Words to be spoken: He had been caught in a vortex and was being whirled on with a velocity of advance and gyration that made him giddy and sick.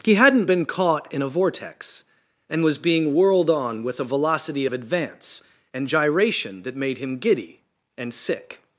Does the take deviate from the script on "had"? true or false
true